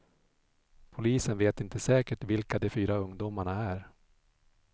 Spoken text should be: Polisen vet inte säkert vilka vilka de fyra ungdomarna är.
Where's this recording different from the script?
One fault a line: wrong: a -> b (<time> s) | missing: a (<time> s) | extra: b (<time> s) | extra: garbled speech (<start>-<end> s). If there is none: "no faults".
missing: vilka (2.6 s)